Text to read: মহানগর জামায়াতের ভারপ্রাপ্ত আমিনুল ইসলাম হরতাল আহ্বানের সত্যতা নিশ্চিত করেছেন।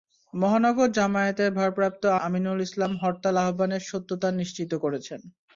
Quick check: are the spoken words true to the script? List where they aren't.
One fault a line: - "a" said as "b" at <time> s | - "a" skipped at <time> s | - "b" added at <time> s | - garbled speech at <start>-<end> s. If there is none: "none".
none